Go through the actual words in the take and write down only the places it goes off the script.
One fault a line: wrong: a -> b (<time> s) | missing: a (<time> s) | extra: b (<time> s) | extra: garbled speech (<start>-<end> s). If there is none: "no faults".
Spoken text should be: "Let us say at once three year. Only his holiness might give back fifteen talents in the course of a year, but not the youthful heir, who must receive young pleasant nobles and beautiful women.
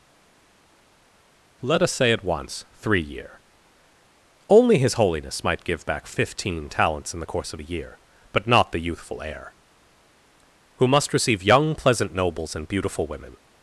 no faults